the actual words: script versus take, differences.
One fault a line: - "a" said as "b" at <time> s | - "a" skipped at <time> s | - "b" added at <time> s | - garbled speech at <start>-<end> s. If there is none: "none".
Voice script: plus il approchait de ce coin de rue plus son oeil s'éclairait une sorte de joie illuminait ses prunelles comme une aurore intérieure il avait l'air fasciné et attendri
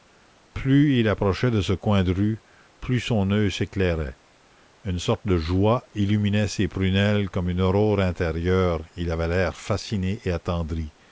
none